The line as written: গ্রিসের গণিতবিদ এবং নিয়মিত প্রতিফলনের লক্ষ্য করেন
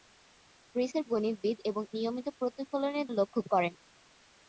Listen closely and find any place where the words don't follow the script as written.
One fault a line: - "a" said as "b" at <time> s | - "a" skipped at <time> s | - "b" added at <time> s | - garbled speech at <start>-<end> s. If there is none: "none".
none